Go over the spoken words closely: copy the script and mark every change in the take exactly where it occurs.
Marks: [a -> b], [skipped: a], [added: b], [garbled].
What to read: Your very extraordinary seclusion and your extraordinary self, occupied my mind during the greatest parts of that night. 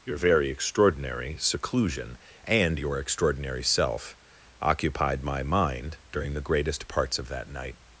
Your very extraordinary seclusion and your extraordinary self, occupied my mind during the greatest parts of that night.